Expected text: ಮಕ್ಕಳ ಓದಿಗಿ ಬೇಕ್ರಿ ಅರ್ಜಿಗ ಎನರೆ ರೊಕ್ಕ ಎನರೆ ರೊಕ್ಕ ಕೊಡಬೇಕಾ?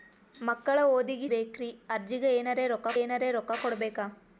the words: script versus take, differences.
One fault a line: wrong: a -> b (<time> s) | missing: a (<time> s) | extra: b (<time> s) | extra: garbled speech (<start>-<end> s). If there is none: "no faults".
no faults